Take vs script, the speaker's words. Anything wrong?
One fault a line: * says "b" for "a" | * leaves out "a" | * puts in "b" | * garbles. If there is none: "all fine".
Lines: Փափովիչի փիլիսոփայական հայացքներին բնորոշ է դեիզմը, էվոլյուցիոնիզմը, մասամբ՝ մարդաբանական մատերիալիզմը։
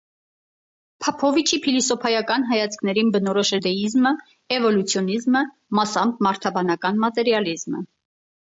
all fine